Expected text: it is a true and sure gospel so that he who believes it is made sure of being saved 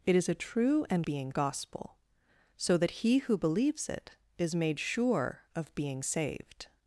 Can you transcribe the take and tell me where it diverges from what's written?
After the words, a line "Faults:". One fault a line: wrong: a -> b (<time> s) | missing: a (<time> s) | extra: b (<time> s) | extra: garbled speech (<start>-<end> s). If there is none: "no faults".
it is a true and being gospel so that he who believes it is made sure of being saved
Faults:
wrong: sure -> being (1.0 s)